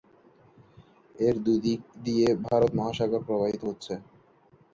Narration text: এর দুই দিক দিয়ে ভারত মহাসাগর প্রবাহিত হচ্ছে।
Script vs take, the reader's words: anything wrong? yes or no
no